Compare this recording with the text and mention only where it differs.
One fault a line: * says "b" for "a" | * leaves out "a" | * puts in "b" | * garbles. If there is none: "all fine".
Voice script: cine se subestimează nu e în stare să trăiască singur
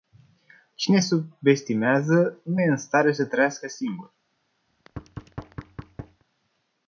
* leaves out "se"